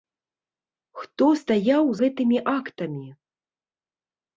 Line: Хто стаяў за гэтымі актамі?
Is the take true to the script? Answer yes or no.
no